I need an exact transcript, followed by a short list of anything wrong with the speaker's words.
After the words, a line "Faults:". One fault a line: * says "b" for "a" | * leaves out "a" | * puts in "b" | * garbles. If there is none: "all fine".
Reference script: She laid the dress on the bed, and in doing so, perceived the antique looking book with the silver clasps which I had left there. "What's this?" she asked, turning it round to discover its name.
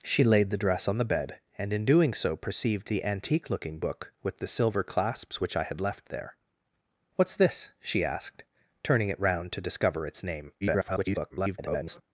She laid the dress on the bed, and in doing so, perceived the antique looking book with the silver clasps which I had left there. "What's this?" she asked, turning it round to discover its name. [garbled]
Faults:
* garbles